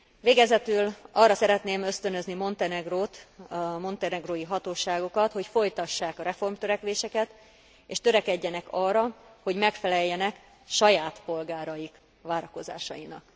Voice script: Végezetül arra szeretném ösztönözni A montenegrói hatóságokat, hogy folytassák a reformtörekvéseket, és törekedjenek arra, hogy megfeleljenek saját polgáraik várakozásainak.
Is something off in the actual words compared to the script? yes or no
yes